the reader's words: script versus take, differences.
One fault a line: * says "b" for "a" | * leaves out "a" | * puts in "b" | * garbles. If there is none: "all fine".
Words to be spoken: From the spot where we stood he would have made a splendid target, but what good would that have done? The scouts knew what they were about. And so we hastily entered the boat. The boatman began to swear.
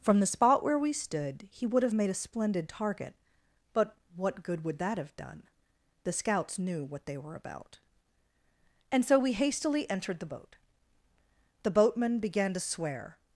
all fine